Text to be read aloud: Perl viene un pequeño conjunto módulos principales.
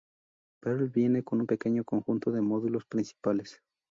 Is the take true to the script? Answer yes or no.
no